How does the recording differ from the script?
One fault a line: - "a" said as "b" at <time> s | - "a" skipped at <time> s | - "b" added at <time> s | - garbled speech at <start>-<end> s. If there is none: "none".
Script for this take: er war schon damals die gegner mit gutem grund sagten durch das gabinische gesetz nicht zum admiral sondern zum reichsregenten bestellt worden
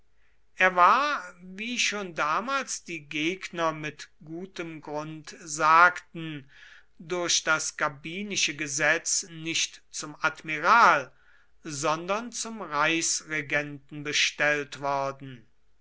- "wie" added at 1.4 s